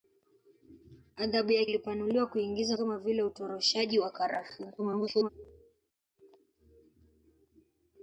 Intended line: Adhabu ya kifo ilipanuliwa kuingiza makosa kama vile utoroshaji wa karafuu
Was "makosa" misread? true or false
true